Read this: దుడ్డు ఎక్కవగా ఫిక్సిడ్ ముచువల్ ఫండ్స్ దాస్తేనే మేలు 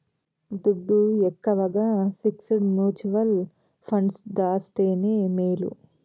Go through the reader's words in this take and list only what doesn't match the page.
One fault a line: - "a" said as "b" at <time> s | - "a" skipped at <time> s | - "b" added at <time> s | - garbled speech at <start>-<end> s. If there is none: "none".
none